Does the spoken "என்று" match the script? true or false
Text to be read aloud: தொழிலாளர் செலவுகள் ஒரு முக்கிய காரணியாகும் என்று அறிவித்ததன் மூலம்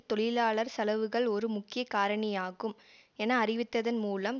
false